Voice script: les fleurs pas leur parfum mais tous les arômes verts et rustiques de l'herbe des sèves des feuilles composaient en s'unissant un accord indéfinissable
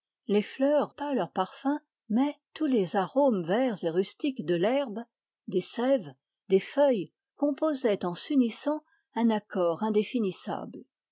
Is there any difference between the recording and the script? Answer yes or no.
no